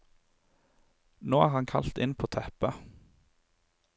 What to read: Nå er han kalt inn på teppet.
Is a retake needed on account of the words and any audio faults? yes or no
no